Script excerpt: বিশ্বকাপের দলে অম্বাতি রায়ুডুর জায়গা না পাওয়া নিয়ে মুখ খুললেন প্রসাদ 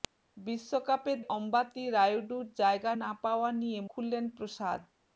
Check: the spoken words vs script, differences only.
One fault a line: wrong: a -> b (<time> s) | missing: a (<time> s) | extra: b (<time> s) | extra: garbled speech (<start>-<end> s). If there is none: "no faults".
missing: দলে (1.2 s)
missing: মুখ (3.8 s)